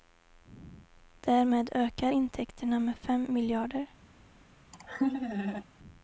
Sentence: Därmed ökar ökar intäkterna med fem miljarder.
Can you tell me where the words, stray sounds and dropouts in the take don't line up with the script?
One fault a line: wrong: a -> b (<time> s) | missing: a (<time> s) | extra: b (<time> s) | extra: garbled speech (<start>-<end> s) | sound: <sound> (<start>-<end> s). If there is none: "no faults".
missing: ökar (2.1 s)
sound: laugh (4.7-5.6 s)